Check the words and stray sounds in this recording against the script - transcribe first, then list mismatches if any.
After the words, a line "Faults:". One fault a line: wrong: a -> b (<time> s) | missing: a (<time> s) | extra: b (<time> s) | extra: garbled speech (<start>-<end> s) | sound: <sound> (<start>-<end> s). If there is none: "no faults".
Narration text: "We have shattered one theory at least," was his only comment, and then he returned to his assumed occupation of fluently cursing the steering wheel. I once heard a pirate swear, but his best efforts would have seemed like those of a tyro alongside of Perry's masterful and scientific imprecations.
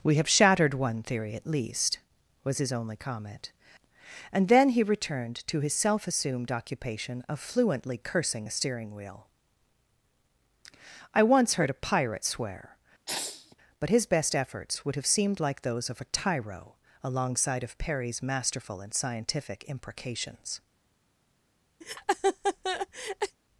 "We have shattered one theory at least," was his only comment, and then he returned to his self assumed occupation of fluently cursing the steering wheel. I once heard a pirate swear, but his best efforts would have seemed like those of a tyro alongside of Perry's masterful and scientific imprecations.
Faults:
extra: self (5.7 s)
sound: sneeze (13.1-13.6 s)
sound: laugh (21.8-23.4 s)